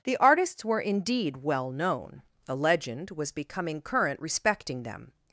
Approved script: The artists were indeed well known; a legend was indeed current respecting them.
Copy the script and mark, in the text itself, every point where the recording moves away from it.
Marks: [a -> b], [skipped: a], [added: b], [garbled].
The artists were indeed well known; a legend was [indeed -> becoming] current respecting them.